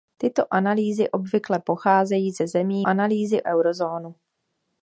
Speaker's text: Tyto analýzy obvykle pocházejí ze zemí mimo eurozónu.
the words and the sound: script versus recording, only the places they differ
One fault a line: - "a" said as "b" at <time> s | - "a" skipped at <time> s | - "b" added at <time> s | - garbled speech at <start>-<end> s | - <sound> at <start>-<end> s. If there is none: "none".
- "mimo" said as "analýzy" at 2.9 s